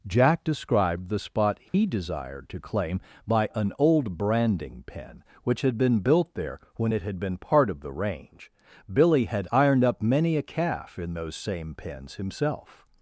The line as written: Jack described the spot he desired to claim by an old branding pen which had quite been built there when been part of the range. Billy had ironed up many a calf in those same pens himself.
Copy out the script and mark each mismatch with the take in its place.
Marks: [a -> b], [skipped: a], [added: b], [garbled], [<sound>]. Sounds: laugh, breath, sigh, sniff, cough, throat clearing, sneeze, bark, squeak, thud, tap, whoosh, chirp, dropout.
Jack described the spot he [dropout] desired to claim by an old branding pen which had [skipped: quite] been built there when [added: it had] been part of the range. Billy had ironed up many a calf in those same pens himself.